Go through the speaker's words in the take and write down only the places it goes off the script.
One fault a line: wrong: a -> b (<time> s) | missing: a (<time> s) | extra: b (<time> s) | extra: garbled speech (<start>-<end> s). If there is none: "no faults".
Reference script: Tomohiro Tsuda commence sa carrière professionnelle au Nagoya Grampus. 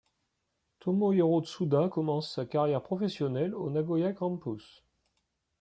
no faults